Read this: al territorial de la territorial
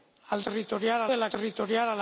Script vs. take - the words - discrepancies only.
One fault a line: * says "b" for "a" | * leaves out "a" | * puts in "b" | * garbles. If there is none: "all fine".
all fine